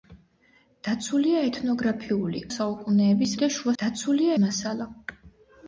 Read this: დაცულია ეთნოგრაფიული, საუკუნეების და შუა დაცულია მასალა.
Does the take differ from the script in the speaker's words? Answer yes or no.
no